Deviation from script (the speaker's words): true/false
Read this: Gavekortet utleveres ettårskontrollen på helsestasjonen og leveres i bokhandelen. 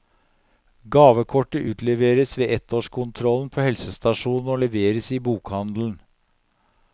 true